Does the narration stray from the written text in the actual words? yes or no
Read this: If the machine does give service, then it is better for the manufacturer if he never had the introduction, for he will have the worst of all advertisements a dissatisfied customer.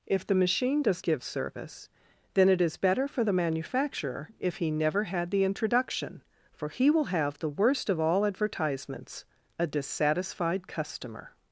no